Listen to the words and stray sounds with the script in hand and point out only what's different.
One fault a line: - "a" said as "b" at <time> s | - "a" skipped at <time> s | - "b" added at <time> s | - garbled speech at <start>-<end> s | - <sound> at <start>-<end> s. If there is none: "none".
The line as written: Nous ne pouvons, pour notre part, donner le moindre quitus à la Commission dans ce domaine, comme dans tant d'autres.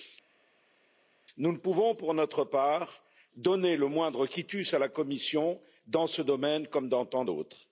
none